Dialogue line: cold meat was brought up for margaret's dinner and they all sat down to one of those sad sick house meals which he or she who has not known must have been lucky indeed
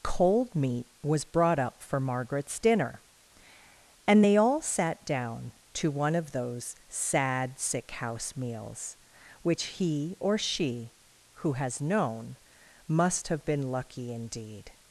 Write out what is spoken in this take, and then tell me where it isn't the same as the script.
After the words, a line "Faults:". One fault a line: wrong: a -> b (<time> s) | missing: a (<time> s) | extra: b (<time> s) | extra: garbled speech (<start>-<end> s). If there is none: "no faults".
cold meat was brought up for margaret's dinner and they all sat down to one of those sad sick house meals which he or she who has known must have been lucky indeed
Faults:
missing: not (11.8 s)